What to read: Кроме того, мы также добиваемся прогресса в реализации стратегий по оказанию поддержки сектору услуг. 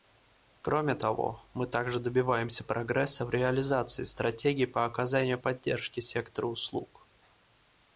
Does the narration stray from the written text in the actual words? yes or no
no